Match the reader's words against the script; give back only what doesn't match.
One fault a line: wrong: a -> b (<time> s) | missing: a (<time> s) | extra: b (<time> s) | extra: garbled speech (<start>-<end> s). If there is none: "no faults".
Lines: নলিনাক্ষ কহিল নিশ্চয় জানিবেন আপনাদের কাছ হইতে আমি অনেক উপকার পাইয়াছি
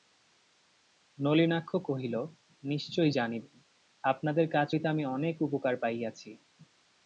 no faults